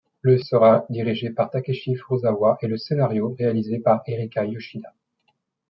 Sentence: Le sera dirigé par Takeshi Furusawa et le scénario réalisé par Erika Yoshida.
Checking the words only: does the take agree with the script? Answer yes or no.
yes